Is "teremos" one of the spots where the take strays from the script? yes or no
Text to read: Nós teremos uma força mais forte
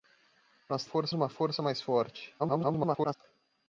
yes